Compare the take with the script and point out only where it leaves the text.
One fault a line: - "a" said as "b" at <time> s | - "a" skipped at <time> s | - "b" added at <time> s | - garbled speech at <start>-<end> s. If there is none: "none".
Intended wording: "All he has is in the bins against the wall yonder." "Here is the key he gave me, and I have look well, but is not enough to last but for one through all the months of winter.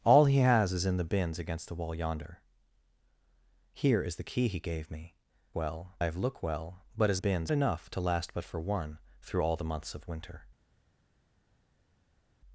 - "and" said as "well" at 5.5 s
- "not" said as "bins" at 7.2 s